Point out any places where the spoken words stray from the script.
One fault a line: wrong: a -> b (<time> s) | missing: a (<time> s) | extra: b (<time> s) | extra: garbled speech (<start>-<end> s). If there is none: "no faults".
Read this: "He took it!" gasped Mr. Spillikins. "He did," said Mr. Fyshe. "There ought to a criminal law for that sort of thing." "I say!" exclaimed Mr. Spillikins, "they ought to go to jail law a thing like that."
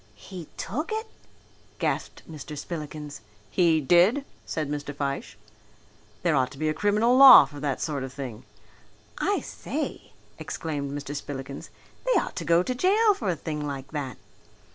extra: be (6.6 s)
wrong: law -> for (13.1 s)